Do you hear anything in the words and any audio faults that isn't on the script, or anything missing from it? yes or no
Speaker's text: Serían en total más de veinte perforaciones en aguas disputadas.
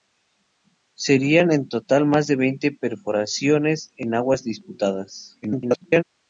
yes